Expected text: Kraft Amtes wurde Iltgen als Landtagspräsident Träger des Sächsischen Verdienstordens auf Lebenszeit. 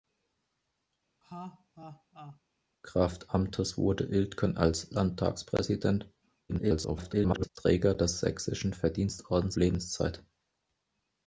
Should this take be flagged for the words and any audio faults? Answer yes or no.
yes